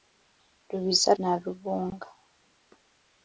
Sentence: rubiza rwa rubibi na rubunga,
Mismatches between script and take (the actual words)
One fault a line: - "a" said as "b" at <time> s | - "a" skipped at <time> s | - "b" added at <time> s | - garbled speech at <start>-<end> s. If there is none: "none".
- "rwa rubibi" skipped at 1.1 s